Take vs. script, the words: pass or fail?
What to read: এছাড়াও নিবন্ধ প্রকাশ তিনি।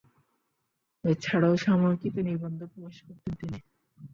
fail